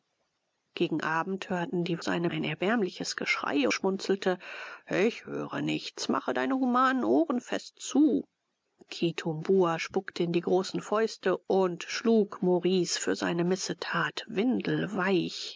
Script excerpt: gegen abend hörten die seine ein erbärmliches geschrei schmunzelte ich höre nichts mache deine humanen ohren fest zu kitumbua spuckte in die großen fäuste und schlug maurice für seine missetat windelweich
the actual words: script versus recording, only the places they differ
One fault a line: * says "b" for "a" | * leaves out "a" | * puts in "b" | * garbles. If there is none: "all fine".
all fine